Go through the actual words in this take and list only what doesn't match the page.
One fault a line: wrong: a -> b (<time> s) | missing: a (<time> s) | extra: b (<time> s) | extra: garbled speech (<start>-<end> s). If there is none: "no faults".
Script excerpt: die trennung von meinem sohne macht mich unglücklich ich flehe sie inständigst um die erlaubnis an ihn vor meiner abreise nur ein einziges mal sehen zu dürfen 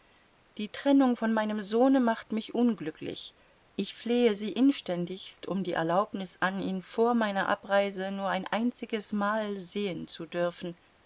no faults